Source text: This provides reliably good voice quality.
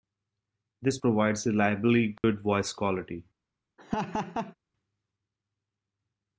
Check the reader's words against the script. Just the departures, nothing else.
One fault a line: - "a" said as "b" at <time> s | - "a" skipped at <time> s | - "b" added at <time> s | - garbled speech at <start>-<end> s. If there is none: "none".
none